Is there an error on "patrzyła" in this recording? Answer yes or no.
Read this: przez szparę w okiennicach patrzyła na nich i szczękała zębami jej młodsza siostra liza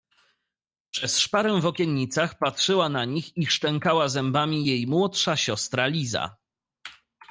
no